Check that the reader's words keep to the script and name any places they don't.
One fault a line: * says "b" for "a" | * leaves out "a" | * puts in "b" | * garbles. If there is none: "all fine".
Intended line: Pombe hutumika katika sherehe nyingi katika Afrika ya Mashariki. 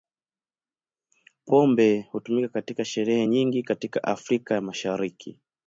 all fine